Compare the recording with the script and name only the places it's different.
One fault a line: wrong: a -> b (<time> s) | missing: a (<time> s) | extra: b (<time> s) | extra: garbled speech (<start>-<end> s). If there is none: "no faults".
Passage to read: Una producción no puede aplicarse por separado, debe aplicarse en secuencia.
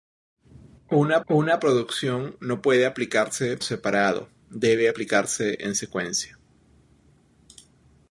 extra: una (1.3 s)
missing: por (3.6 s)